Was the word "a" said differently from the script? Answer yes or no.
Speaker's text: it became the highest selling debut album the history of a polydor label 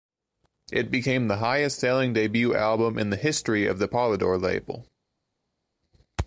yes